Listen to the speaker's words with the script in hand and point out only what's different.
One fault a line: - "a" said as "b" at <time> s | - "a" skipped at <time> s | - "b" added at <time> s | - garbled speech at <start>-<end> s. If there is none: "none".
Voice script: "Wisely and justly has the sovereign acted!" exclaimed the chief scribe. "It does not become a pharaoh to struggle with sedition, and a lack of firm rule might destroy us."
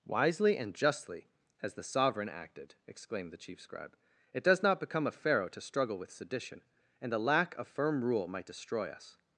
none